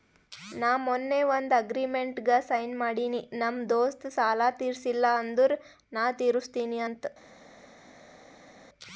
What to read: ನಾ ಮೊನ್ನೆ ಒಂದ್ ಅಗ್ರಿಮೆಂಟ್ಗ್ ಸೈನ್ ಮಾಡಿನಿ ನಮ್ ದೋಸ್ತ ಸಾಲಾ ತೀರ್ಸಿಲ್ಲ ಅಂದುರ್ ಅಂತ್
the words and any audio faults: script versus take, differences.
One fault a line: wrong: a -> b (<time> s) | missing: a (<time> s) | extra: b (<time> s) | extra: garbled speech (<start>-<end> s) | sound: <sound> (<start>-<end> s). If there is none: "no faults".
extra: ನಾ ತಿರುಸ್ತಿನಿ (5.9 s)